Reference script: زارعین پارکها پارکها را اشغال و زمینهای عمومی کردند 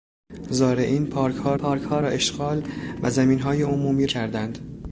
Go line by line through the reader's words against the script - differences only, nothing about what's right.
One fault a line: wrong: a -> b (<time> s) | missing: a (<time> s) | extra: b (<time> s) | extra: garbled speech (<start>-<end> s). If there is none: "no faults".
no faults